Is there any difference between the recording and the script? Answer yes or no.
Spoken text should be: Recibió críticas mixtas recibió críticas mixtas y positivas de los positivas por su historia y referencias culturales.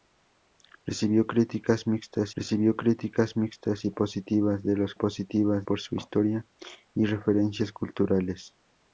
no